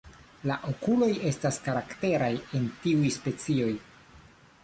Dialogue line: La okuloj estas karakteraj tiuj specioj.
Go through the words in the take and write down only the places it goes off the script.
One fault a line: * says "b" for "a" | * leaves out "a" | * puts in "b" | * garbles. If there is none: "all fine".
* puts in "en"